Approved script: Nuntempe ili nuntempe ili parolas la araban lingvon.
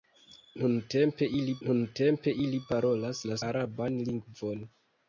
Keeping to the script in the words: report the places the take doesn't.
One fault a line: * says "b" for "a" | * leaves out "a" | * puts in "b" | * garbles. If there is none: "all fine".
all fine